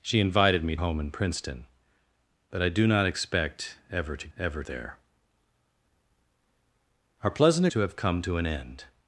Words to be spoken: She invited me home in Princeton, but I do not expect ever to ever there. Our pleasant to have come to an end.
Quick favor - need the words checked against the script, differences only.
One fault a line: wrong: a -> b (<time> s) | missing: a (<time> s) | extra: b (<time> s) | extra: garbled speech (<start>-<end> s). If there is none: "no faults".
no faults